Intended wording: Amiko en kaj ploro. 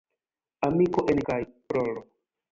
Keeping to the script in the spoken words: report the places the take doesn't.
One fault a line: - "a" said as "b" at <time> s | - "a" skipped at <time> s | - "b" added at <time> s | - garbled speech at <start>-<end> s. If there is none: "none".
none